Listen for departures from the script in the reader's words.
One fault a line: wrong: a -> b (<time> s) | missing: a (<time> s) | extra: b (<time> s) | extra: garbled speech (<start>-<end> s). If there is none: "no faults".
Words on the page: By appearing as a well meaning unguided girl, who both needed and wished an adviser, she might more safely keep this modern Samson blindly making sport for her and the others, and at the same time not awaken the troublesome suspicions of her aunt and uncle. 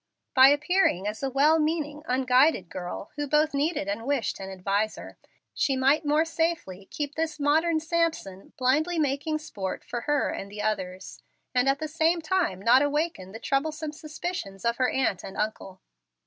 no faults